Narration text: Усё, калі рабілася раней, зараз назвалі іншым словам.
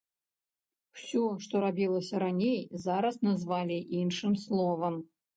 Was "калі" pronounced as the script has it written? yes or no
no